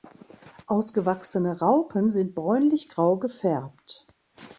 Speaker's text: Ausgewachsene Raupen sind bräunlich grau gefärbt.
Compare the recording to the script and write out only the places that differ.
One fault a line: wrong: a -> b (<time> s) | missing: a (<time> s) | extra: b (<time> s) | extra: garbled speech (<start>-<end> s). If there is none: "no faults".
no faults